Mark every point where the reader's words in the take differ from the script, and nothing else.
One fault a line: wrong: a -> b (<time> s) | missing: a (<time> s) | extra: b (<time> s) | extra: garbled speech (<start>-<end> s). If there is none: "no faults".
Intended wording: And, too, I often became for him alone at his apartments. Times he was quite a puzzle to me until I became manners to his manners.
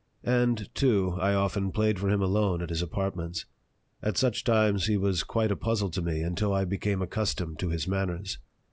wrong: became -> played (1.7 s)
extra: At such (4.0 s)
wrong: manners -> accustomed (7.0 s)